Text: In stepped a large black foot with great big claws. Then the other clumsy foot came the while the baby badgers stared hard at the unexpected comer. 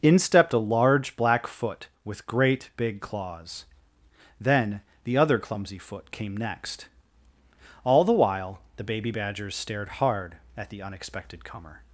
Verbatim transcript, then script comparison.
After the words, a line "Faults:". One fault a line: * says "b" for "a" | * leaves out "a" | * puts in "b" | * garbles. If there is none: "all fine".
In stepped a large black foot with great big claws. Then the other clumsy foot came next. All the while the baby badgers stared hard at the unexpected comer.
Faults:
* puts in "next All"